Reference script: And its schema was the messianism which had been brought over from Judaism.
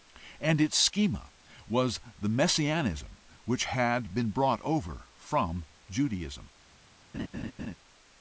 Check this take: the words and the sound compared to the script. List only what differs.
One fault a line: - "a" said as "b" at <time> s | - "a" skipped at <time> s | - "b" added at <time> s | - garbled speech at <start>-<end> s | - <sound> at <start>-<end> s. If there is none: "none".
- laugh at 7.1-7.8 s